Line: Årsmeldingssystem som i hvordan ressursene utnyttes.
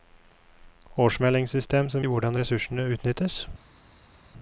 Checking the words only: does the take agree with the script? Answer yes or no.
yes